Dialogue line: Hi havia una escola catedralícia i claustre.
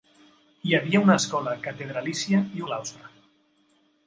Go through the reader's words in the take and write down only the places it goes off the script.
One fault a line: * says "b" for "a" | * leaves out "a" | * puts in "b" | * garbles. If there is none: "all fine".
all fine